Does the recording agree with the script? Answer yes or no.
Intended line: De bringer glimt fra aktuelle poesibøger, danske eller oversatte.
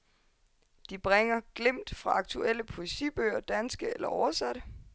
yes